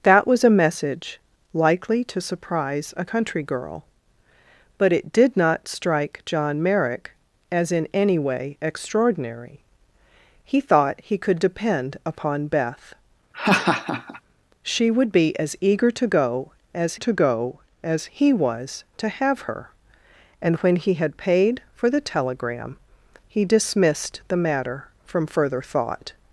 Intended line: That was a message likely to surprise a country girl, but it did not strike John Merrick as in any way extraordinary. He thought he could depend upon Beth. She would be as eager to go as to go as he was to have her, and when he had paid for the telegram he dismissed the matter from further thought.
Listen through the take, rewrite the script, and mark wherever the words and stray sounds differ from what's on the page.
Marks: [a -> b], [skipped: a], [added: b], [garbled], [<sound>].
That was a message likely to surprise a country girl, but it did not strike John Merrick as in any way extraordinary. He thought he could depend upon Beth. [laugh] She would be as eager to go as to go as he was to have her, and when he had paid for the telegram he dismissed the matter from further thought.